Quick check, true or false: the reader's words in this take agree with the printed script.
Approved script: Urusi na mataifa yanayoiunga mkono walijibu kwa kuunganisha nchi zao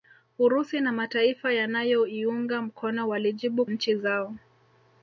false